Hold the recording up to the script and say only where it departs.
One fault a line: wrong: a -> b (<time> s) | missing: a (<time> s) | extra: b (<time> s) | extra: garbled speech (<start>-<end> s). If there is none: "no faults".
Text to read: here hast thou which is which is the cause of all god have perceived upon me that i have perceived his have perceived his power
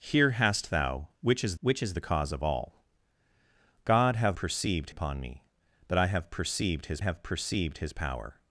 no faults